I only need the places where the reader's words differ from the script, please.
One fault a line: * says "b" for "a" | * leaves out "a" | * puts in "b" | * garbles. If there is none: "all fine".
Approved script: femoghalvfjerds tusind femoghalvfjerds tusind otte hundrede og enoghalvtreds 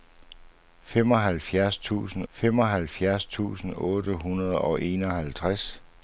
all fine